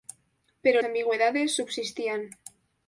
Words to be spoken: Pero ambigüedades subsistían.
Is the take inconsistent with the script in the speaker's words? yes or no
no